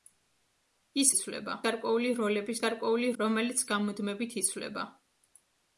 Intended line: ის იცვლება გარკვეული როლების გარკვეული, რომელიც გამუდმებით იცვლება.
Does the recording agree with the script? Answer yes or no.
yes